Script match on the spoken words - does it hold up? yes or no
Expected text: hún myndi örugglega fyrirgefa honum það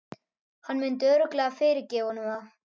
no